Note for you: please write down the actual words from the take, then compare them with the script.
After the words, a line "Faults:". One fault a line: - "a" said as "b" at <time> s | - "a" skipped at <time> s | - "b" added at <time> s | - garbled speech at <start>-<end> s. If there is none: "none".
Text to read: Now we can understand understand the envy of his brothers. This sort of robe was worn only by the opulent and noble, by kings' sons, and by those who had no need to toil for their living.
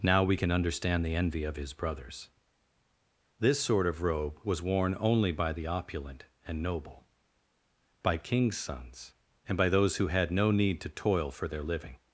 Now we can understand the envy of his brothers. This sort of robe was worn only by the opulent and noble, by kings' sons, and by those who had no need to toil for their living.
Faults:
- "understand" skipped at 1.0 s